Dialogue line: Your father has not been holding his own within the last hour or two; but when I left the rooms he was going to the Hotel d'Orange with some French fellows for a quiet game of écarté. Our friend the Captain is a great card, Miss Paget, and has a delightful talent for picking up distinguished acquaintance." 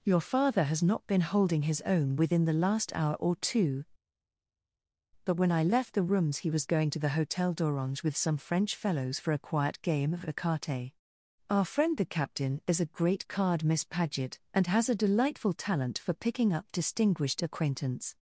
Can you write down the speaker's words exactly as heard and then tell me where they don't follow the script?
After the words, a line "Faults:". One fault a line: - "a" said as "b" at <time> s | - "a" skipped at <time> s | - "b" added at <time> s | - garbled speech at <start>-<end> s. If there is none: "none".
Your father has not been holding his own within the last hour or two; but when I left the rooms he was going to the Hotel d'Orange with some French fellows for a quiet game of écarté. Our friend the Captain is a great card, Miss Paget, and has a delightful talent for picking up distinguished acquaintance."
Faults:
none